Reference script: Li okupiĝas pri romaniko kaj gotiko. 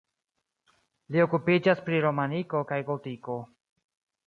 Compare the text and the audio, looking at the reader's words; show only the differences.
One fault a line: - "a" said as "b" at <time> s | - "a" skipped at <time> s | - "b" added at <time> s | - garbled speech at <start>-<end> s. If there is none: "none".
none